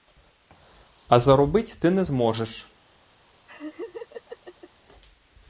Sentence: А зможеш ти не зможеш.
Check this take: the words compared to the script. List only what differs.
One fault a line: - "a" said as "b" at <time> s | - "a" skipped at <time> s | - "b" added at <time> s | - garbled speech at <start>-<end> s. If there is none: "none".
- "зможеш" said as "заробить" at 1.2 s